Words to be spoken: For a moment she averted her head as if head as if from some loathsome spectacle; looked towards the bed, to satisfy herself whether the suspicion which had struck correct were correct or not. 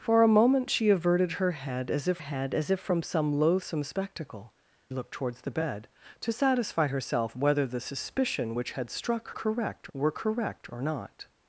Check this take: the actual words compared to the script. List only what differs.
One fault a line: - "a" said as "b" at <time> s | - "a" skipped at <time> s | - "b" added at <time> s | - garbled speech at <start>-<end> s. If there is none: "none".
none